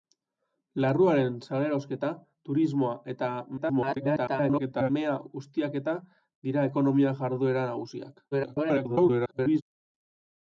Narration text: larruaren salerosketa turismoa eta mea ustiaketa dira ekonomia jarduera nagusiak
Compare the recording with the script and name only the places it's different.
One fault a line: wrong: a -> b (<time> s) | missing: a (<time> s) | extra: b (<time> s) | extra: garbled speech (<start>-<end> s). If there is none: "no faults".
extra: garbled speech (3.6-4.9 s)
extra: garbled speech (8.3-9.6 s)